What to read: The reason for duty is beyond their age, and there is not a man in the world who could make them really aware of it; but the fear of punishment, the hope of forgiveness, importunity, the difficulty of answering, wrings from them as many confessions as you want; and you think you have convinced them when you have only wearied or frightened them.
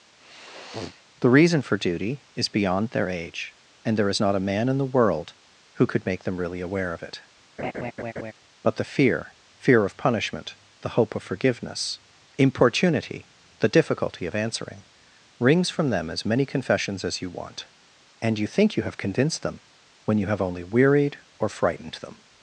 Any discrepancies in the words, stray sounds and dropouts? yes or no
yes